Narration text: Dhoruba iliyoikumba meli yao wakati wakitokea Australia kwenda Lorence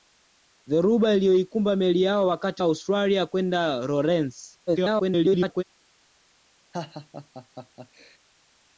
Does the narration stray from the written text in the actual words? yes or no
yes